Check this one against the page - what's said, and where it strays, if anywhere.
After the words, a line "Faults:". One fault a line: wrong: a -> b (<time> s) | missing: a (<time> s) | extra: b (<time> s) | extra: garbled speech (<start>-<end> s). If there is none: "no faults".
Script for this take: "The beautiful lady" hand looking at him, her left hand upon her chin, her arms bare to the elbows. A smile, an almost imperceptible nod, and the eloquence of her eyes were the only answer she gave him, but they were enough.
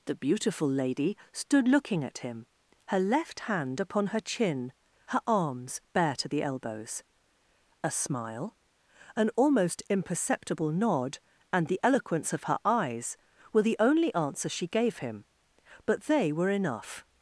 "The beautiful lady" stood looking at him, her left hand upon her chin, her arms bare to the elbows. A smile, an almost imperceptible nod, and the eloquence of her eyes were the only answer she gave him, but they were enough.
Faults:
wrong: hand -> stood (1.3 s)